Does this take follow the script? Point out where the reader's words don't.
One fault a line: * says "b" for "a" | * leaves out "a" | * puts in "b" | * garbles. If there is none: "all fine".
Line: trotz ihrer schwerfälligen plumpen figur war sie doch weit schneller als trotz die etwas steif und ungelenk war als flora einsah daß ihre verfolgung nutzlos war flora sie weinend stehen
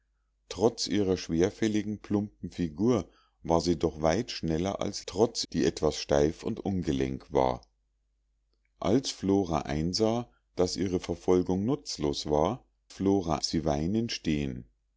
all fine